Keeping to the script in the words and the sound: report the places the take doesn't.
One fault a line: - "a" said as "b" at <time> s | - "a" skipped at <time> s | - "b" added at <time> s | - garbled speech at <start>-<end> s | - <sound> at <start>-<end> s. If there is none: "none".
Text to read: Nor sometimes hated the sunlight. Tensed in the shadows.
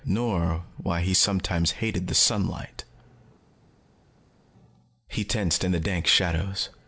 - "why he" added at 0.8 s
- "He" added at 5.1 s
- "dank" added at 5.8 s